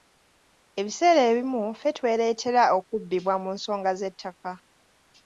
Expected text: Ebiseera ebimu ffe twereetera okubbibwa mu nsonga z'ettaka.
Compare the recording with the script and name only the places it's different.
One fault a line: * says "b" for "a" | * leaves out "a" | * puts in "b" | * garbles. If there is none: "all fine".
all fine